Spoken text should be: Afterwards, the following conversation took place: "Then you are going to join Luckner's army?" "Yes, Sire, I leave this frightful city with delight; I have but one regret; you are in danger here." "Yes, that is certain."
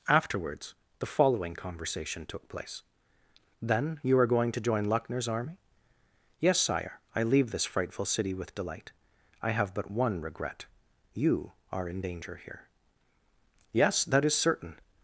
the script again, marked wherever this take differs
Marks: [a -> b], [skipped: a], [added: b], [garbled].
Afterwards, the following conversation took place: "Then you are going to join Luckner's army?" "Yes, Sire, I leave this frightful city with delight; I have but one regret; you are in danger here." "Yes, that is certain."